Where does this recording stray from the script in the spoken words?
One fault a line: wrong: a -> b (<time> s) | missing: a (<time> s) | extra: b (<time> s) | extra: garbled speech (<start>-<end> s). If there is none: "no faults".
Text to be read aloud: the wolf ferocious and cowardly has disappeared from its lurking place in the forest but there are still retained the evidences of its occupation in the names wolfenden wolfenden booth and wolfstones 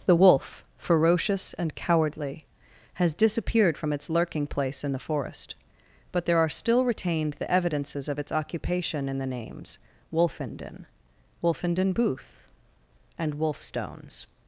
no faults